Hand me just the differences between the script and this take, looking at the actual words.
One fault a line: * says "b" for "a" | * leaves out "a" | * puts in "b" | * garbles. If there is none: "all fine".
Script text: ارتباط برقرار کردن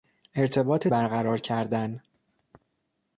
all fine